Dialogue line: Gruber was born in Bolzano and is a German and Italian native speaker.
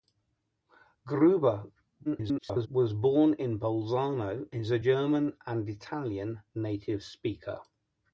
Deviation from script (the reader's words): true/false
true